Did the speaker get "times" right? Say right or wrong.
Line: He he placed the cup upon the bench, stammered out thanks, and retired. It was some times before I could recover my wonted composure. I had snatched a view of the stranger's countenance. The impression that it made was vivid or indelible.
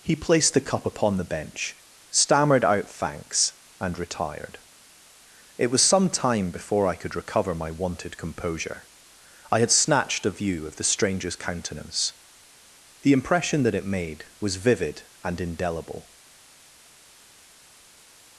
wrong